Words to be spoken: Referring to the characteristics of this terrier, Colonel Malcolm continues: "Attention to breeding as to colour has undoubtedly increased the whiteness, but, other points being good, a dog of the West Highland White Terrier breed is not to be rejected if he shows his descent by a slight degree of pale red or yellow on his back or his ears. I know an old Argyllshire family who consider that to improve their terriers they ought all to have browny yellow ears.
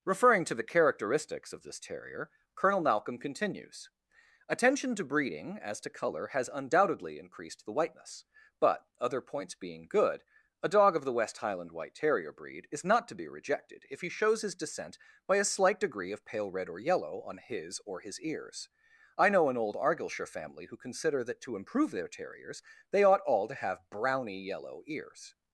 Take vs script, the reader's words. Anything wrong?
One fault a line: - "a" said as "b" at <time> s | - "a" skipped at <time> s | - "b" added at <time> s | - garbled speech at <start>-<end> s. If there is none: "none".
- "back" skipped at 17.8 s